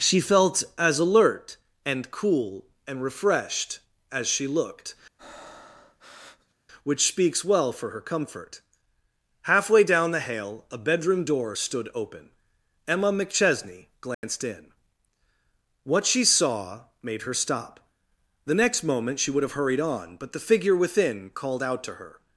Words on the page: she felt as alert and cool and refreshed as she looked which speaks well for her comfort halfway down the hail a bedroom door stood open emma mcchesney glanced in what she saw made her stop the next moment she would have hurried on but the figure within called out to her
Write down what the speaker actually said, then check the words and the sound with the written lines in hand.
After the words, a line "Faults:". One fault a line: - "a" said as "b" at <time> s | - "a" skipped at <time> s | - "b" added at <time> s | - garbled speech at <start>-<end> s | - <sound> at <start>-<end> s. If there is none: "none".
she felt as alert and cool and refreshed as she looked which speaks well for her comfort halfway down the hail a bedroom door stood open emma mcchesney glanced in what she saw made her stop the next moment she would have hurried on but the figure within called out to her
Faults:
- breath at 5.2-6.5 s
- dropout at 14.1-14.2 s